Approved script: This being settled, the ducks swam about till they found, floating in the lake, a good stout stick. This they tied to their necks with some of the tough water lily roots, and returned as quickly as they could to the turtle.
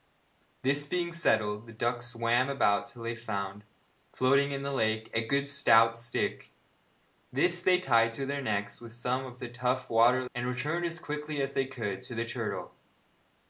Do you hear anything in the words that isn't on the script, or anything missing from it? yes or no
yes